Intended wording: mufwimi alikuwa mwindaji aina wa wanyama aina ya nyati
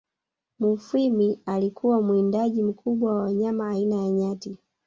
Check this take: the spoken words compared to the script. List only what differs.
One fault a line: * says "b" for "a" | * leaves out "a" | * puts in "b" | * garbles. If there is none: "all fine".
* says "mkubwa" for "aina"